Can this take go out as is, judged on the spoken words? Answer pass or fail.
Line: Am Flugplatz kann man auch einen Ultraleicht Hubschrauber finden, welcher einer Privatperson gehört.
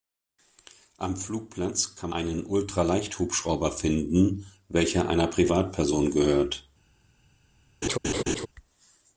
fail